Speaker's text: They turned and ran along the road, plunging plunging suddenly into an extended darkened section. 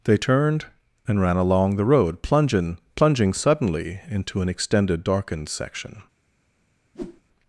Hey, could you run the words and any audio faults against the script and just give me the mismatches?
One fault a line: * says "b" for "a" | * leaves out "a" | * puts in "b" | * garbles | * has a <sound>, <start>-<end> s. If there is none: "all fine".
* has a whoosh, 6.9-7.2 s